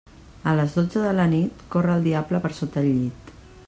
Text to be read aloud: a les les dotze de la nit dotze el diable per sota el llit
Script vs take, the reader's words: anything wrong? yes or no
yes